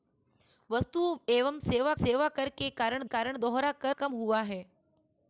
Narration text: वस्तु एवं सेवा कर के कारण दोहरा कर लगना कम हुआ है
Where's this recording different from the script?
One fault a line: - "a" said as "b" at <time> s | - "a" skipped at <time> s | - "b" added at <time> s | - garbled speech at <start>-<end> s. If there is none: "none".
- "सेवा" added at 1.9 s
- "कारण" added at 3.0 s
- "लगना" skipped at 4.0 s